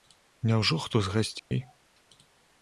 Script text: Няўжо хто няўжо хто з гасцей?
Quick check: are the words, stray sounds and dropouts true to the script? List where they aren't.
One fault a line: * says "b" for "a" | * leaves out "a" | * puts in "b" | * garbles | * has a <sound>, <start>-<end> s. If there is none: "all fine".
* leaves out "няўжо хто"
* has a dropout, 1.4-1.5 s